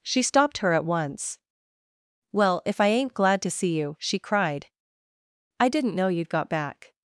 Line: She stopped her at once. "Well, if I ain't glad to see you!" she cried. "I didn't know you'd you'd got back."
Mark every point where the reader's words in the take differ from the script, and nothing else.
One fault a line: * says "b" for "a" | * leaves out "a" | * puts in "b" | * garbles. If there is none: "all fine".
* leaves out "you'd"